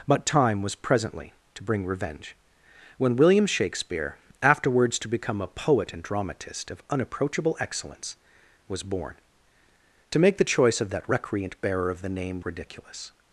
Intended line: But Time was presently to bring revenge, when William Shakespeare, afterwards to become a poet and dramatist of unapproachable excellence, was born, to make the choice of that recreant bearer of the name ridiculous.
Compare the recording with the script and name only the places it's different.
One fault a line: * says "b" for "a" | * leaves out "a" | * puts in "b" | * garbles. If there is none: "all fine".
all fine